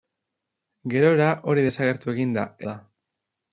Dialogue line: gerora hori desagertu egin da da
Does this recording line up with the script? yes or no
yes